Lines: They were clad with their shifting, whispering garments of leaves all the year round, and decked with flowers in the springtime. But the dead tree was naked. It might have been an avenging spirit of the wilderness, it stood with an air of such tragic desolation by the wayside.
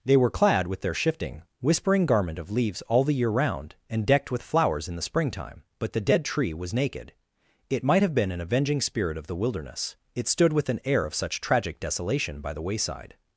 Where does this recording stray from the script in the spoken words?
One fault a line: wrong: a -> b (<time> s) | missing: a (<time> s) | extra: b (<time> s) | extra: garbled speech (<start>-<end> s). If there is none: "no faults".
wrong: garments -> garment (2.1 s)